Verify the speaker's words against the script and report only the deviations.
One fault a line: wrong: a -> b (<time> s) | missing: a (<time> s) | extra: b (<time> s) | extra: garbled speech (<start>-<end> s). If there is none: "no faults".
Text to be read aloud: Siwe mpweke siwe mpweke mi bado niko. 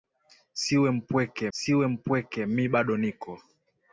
no faults